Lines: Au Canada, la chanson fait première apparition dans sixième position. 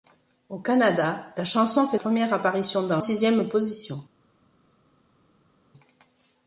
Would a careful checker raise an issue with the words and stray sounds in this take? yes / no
no